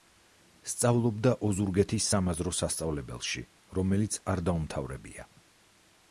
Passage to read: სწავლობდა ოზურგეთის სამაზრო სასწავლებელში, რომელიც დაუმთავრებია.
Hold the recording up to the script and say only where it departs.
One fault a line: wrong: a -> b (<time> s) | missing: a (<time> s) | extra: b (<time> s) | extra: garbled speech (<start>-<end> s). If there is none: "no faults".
extra: არ (4.4 s)